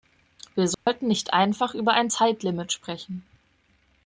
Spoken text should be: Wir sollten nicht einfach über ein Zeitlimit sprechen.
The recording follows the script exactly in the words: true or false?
true